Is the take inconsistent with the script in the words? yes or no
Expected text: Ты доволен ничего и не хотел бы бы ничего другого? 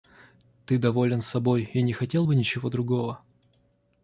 yes